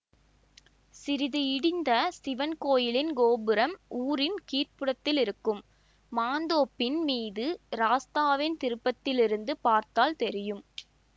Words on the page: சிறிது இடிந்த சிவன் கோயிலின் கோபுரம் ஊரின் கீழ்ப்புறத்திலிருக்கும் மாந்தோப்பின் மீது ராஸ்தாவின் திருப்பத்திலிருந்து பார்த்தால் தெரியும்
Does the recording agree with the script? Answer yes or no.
yes